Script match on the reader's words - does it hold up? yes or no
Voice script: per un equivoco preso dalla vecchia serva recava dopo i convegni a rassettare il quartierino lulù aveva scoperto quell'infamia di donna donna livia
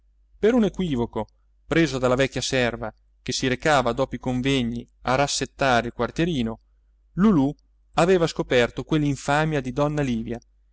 no